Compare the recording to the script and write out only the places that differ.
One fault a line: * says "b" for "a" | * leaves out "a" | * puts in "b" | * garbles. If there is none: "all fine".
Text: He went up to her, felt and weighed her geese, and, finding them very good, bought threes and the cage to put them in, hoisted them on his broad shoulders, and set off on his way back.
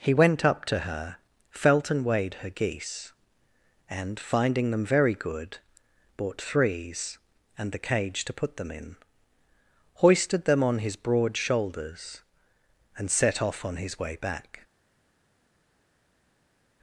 all fine